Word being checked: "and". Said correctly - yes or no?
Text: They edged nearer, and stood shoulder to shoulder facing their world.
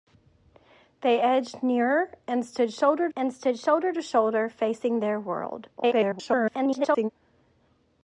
yes